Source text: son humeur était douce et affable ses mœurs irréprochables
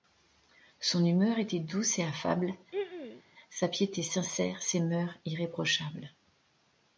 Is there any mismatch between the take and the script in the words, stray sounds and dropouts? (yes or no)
yes